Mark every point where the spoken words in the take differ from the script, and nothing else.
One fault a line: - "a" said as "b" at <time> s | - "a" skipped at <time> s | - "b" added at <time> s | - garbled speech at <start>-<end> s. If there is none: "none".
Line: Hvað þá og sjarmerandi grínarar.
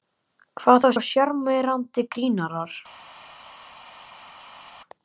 none